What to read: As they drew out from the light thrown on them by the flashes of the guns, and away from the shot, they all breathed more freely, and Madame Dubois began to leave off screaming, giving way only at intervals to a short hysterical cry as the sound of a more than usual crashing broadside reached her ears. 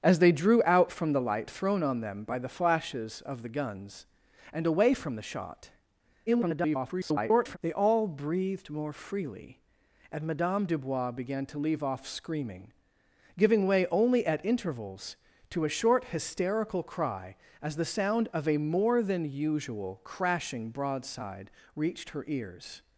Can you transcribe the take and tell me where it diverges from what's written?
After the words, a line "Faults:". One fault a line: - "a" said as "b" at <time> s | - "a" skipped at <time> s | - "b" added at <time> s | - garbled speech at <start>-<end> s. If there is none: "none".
As they drew out from the light thrown on them by the flashes of the guns, and away from the shot, [garbled] they all breathed more freely, and Madame Dubois began to leave off screaming, giving way only at intervals to a short hysterical cry as the sound of a more than usual crashing broadside reached her ears.
Faults:
- garbled speech at 6.3-7.6 s